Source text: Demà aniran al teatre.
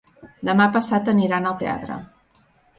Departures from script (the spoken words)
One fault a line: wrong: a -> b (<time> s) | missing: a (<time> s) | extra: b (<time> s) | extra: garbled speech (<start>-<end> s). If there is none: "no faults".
extra: passat (0.8 s)